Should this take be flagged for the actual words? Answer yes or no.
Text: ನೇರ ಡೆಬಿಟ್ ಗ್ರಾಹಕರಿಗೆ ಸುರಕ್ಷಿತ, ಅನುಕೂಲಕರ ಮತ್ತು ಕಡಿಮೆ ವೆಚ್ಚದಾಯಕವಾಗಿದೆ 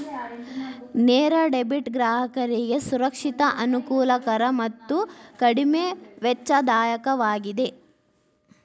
no